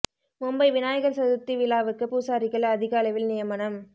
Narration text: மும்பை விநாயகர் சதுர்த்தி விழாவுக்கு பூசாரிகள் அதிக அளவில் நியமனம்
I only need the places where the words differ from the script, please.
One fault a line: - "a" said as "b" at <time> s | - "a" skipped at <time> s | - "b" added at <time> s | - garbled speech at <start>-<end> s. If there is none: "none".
none